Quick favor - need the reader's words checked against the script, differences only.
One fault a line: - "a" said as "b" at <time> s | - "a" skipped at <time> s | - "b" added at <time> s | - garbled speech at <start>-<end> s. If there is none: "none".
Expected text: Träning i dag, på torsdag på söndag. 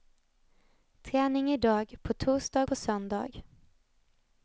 none